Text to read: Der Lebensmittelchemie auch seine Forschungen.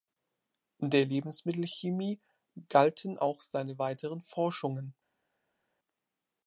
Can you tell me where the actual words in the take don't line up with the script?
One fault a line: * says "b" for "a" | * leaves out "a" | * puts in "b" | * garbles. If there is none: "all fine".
* puts in "galten"
* puts in "weiteren"